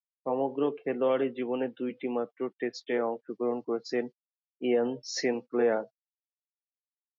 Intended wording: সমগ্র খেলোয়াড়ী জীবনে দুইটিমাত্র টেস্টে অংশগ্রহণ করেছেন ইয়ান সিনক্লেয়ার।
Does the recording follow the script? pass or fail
pass